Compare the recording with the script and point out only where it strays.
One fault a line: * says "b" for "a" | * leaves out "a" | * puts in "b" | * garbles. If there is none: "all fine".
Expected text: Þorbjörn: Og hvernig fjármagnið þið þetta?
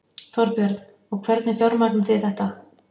all fine